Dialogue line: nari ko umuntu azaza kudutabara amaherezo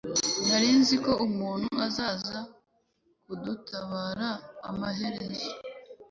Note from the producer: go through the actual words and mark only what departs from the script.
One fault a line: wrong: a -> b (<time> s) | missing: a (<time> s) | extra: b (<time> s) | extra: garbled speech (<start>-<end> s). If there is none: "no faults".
extra: nzi (0.8 s)